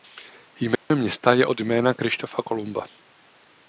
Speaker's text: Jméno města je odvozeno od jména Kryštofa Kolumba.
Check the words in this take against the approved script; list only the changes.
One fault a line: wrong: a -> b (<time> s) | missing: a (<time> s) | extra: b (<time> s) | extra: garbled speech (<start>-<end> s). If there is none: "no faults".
missing: odvozeno (1.5 s)